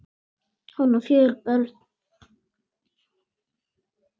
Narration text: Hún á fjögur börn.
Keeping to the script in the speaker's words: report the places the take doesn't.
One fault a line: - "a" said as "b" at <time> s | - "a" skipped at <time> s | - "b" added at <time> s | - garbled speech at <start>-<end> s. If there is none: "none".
none